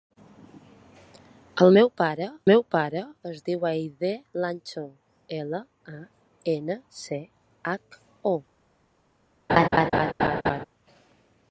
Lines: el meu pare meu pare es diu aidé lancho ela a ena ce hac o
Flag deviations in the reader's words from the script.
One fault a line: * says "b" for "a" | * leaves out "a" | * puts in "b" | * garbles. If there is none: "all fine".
all fine